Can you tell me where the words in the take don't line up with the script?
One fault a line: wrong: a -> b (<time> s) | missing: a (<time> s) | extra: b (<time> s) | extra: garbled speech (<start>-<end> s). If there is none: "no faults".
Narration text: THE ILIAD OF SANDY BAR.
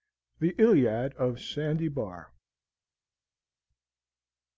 no faults